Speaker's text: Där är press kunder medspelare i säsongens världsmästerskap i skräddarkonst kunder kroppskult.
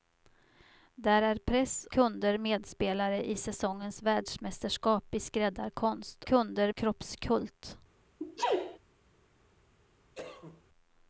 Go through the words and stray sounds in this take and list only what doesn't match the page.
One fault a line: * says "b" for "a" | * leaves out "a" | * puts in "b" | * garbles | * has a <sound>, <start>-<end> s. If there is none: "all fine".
* has a sneeze, 8.2-8.8 s
* has a cough, 10.2-10.6 s